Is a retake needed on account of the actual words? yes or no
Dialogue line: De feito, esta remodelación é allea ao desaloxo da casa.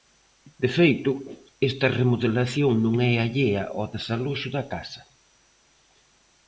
yes